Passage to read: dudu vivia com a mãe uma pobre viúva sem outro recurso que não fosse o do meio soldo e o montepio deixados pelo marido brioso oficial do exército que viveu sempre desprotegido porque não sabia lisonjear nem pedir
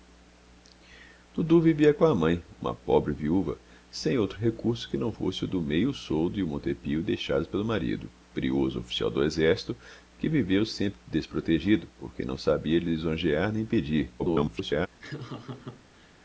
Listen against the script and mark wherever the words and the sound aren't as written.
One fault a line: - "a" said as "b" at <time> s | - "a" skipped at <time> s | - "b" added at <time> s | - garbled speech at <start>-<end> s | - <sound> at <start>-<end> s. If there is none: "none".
- garbled speech at 14.2-14.9 s
- laugh at 15.0-16.2 s